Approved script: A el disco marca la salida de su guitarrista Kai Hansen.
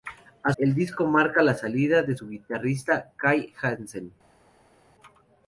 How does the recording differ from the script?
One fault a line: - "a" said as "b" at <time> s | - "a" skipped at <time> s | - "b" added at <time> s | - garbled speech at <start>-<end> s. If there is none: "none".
none